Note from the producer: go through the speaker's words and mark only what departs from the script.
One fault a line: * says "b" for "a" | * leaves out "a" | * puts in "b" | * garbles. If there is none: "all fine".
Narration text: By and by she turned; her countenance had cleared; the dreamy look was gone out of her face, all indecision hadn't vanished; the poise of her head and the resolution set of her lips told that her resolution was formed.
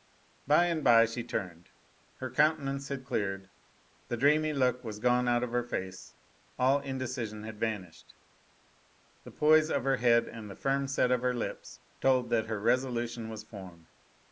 * says "had" for "hadn't"
* says "firm" for "resolution"